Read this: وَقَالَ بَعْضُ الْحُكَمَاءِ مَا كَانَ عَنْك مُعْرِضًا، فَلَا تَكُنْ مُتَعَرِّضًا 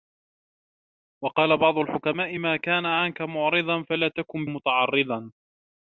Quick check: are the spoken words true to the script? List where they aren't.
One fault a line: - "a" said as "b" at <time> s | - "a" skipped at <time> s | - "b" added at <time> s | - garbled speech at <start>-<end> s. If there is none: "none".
none